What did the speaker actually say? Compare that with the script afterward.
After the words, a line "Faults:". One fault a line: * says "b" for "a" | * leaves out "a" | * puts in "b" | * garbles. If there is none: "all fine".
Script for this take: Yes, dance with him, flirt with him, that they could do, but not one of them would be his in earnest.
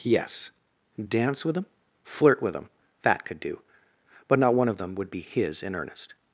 Yes, dance with him, flirt with him, that could do, but not one of them would be his in earnest.
Faults:
* leaves out "they"